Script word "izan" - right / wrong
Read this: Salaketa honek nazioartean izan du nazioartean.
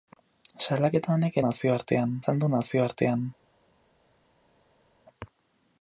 right